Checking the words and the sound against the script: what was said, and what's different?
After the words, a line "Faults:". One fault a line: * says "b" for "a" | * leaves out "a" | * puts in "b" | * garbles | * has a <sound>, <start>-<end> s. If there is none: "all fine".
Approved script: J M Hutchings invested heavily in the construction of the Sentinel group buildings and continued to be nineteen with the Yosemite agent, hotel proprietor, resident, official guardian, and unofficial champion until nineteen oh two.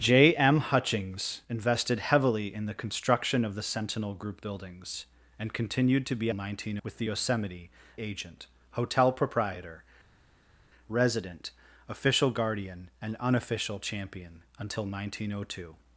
J M Hutchings invested heavily in the construction of the Sentinel group buildings and continued to be nineteen with the Yosemite agent, hotel proprietor, resident, official guardian, and unofficial champion until nineteen oh two.
Faults:
all fine